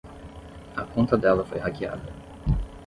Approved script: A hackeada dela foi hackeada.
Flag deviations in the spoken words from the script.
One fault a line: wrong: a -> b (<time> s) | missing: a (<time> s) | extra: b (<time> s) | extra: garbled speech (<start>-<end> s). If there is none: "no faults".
wrong: hackeada -> conta (0.8 s)